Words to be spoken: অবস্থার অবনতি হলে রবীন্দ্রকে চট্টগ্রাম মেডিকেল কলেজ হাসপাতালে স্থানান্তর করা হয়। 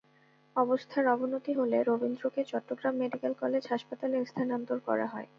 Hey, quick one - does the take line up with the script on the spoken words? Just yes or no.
yes